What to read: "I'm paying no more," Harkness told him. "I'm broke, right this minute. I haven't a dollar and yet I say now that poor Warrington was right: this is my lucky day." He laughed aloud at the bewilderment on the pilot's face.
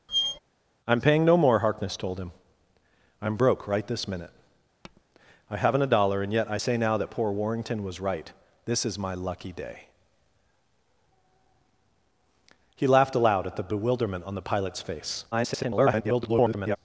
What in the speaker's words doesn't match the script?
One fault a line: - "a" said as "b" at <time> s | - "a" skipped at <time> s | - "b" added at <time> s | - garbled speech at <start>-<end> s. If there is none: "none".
- garbled speech at 15.3-16.8 s